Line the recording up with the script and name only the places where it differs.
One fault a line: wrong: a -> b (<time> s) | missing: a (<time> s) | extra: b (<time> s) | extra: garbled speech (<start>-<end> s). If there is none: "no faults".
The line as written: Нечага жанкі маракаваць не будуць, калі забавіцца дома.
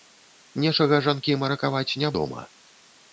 missing: будуць калі забавіцца (2.1 s)